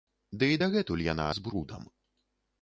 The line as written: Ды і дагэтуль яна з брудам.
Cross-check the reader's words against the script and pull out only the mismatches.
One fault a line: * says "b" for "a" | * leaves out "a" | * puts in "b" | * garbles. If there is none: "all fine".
all fine